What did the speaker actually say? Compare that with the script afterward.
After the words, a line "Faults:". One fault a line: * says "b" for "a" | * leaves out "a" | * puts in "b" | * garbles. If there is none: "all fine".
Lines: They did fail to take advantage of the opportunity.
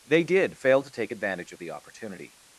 They did fail to take advantage of the opportunity.
Faults:
all fine